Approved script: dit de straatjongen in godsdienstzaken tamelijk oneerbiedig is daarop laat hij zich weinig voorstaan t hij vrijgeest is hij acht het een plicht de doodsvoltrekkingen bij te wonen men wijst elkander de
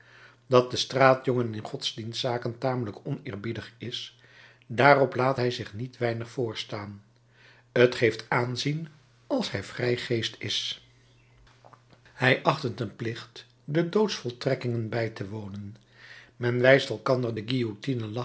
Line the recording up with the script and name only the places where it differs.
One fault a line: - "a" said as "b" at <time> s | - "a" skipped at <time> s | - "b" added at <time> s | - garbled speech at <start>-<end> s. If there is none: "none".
- "dit" said as "dat" at 0.5 s
- "niet" added at 5.7 s
- "geeft aanzien als" added at 7.9 s